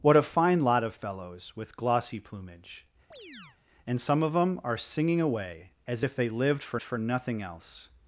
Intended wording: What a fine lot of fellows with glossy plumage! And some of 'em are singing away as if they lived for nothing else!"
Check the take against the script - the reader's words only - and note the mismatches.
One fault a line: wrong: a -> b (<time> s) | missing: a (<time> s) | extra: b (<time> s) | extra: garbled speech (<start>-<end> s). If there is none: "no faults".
extra: for (6.8 s)